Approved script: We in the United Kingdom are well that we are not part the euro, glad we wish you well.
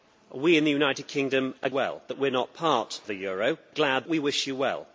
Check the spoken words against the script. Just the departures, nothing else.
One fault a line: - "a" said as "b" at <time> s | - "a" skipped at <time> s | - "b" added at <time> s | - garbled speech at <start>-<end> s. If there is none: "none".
none